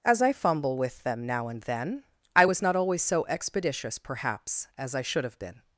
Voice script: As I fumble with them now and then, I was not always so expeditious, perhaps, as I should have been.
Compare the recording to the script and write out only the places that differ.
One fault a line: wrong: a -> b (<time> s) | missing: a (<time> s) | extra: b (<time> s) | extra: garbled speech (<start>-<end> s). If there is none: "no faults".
no faults